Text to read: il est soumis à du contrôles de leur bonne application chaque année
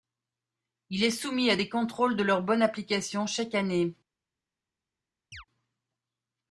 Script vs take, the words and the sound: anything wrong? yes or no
yes